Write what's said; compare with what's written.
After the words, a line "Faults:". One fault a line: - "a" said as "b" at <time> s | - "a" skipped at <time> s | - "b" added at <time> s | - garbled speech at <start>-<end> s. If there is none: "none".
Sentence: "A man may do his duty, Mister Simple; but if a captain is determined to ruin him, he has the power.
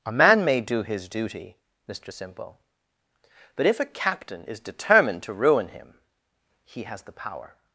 "A man may do his duty, Mister Simple; but if a captain is determined to ruin him, he has the power.
Faults:
none